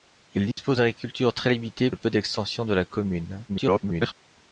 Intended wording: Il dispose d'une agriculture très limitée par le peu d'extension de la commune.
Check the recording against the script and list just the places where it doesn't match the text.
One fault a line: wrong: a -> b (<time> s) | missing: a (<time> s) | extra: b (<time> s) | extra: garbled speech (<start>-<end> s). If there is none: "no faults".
missing: par (1.9 s)
extra: garbled speech (3.5-4.1 s)